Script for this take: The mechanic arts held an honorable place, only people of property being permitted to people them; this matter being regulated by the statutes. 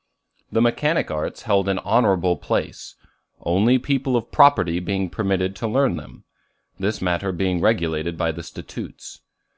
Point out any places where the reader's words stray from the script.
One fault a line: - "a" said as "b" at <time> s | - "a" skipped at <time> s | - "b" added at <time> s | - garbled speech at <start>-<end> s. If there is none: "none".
- "people" said as "learn" at 5.7 s